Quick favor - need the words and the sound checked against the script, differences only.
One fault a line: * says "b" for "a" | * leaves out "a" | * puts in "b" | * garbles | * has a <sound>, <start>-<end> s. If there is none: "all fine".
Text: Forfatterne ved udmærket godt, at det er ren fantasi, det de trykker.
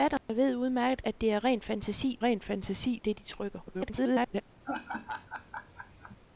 * has a dropout, 0.2-0.3 s
* leaves out "godt"
* puts in "ren fantasi"
* garbles
* has a laugh, 4.6-6.2 s